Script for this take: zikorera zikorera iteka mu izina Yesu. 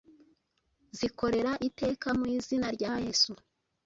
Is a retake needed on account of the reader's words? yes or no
yes